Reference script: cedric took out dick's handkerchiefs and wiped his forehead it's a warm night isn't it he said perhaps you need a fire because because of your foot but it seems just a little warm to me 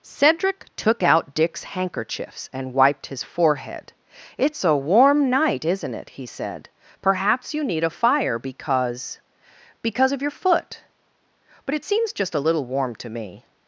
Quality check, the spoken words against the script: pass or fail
pass